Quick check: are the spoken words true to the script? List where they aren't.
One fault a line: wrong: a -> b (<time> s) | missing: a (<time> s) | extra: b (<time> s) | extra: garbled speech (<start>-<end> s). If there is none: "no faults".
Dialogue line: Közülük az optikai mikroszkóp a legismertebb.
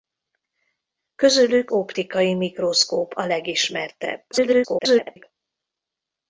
missing: az (1.7 s)
extra: garbled speech (4.3-5.2 s)